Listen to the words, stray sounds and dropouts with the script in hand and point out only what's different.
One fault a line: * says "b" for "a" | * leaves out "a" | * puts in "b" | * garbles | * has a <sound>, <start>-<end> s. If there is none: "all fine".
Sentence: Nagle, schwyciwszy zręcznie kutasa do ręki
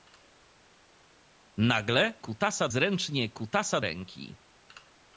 * says "kutasa" for "schwyciwszy"
* leaves out "do"